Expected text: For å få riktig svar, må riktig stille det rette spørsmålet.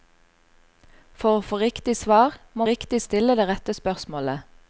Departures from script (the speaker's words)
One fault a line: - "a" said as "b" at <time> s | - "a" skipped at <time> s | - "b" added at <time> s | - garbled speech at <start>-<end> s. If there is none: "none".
none